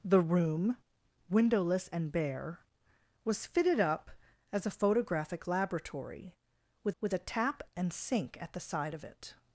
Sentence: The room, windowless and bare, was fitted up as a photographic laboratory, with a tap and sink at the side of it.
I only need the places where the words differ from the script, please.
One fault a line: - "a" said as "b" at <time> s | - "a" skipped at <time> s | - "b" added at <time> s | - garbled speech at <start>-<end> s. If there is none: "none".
- "with" added at 7.0 s